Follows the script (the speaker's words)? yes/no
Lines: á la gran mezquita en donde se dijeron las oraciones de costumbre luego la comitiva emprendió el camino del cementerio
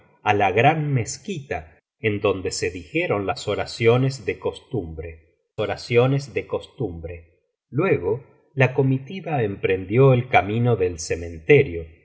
no